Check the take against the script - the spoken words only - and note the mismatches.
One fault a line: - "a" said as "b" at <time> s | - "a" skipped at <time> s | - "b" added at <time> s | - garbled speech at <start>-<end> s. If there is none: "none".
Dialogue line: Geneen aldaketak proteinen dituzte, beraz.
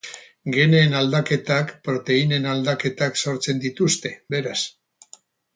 - "aldaketak sortzen" added at 2.5 s